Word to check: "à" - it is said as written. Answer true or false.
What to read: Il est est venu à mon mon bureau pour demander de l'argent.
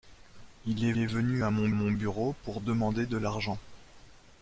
true